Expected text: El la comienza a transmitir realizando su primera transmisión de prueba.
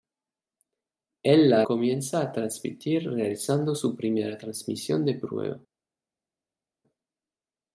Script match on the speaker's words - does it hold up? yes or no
yes